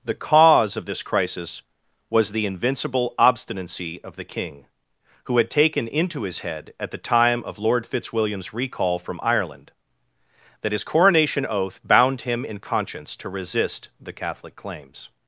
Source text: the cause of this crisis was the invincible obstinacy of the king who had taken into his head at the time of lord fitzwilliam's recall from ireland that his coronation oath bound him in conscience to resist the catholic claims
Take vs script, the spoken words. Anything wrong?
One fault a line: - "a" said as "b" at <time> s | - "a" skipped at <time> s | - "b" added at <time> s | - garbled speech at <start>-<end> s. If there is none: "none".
none